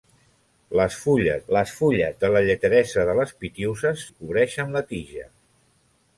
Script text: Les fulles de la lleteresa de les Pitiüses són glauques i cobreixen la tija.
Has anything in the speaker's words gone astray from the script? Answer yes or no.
yes